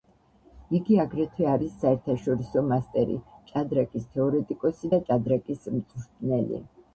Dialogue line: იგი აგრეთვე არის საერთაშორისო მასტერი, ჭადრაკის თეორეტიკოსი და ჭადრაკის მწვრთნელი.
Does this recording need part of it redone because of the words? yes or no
no